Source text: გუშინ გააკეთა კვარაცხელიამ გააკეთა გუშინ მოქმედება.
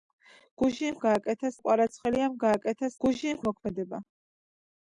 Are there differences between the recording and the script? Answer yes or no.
no